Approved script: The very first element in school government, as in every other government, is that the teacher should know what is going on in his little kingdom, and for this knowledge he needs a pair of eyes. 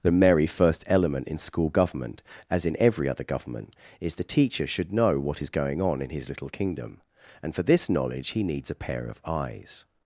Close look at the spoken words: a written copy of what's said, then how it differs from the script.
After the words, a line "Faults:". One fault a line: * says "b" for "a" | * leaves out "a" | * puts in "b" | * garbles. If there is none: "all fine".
The merry first element in school government, as in every other government, is the teacher should know what is going on in his little kingdom, and for this knowledge he needs a pair of eyes.
Faults:
* says "merry" for "very"
* leaves out "that"